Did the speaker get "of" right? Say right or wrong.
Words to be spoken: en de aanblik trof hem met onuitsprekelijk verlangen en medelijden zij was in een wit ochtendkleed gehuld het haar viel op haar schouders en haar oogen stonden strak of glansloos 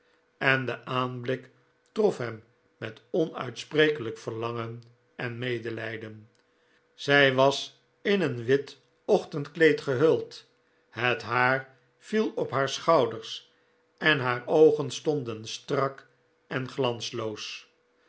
wrong